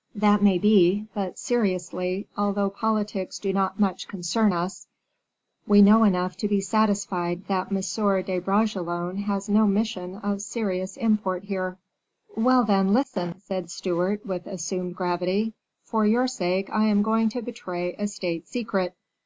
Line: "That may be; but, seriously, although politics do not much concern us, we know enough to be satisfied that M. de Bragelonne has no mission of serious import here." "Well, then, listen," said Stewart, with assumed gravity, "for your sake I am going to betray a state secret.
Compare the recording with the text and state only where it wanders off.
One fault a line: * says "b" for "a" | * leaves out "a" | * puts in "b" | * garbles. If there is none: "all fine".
all fine